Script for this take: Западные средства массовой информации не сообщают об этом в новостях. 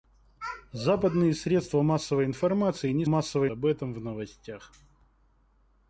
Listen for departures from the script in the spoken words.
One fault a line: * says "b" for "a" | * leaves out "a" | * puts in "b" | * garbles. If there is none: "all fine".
* says "массовой" for "сообщают"